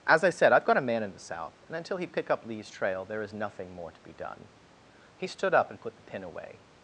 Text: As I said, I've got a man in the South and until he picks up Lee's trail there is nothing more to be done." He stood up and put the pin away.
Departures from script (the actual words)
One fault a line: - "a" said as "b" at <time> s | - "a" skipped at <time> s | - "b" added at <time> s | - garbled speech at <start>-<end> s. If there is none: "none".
- "picks" said as "pick" at 2.1 s